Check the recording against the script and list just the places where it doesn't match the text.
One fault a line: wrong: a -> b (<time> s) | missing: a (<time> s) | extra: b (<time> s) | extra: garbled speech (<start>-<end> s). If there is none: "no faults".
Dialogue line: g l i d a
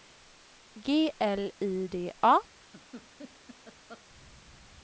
no faults